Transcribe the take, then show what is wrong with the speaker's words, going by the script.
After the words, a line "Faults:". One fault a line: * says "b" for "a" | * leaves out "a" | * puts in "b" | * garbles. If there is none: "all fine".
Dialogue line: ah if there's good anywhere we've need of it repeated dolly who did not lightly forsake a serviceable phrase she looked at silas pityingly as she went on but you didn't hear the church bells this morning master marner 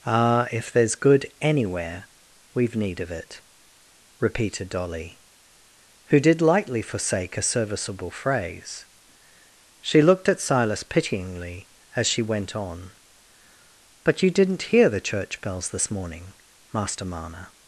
ah if there's good anywhere we've need of it repeated dolly who did lightly forsake a serviceable phrase she looked at silas pityingly as she went on but you didn't hear the church bells this morning master marner
Faults:
* leaves out "not"